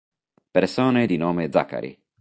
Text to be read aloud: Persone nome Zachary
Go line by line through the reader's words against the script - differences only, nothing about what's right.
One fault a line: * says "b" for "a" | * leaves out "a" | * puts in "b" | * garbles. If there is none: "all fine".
* puts in "di"